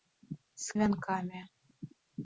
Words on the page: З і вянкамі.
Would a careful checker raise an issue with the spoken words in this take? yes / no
no